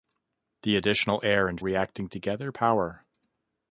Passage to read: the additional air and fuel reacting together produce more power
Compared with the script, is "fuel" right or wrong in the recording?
wrong